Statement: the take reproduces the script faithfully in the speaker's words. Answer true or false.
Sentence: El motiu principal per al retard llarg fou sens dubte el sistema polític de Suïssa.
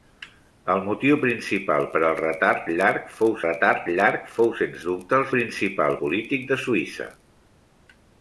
false